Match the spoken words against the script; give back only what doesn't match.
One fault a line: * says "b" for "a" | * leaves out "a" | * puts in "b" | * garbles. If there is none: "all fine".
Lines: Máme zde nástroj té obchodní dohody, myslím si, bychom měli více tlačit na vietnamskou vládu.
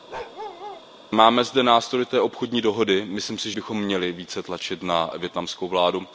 all fine